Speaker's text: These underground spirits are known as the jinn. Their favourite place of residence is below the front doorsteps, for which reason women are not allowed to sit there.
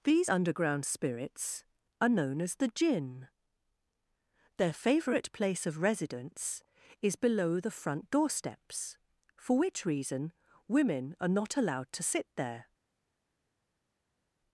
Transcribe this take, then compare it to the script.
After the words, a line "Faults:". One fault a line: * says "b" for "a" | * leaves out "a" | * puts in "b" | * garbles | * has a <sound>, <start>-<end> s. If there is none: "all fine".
These underground spirits are known as the jinn. Their favourite place of residence is below the front doorsteps, for which reason women are not allowed to sit there.
Faults:
all fine